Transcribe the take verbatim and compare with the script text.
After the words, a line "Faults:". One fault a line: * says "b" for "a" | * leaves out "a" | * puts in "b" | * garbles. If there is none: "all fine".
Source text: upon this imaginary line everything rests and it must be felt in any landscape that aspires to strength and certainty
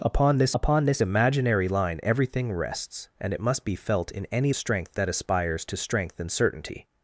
upon this upon this imaginary line everything rests and it must be felt in any strength that aspires to strength and certainty
Faults:
* puts in "upon this"
* says "strength" for "landscape"